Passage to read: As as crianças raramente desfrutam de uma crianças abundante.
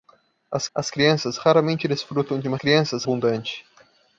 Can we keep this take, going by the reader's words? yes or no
yes